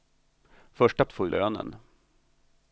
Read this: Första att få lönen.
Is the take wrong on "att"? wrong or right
right